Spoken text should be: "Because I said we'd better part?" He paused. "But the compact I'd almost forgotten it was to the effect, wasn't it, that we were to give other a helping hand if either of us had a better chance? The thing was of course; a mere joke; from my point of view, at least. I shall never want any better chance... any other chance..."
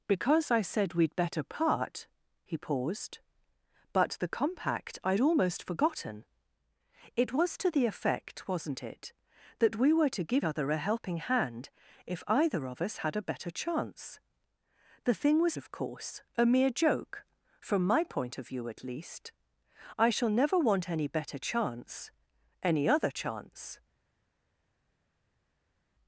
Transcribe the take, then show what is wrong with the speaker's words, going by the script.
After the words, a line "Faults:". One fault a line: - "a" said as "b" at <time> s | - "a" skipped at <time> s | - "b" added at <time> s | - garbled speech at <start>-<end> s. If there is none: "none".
"Because I said we'd better part?" He paused. "But the compact I'd almost forgotten it was to the effect, wasn't it, that we were to give other a helping hand if either of us had a better chance? The thing was of course; a mere joke; from my point of view, at least. I shall never want any better chance... any other chance..."
Faults:
none